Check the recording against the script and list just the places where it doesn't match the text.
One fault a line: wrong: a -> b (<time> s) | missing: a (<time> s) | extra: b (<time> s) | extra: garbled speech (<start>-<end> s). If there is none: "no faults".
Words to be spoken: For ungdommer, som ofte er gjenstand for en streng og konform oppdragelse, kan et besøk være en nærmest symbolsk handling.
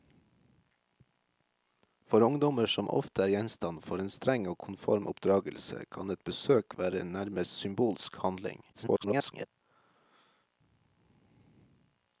extra: garbled speech (8.7-9.5 s)